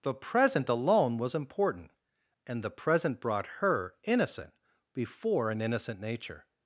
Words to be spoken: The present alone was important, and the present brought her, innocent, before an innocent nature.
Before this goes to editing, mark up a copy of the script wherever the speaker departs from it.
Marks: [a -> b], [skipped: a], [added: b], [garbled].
The present alone was important, and the present brought her, innocent, before an innocent nature.